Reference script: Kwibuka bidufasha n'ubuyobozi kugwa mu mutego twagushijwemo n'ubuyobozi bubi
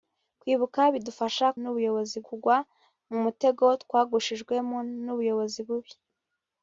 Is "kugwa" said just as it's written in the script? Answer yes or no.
yes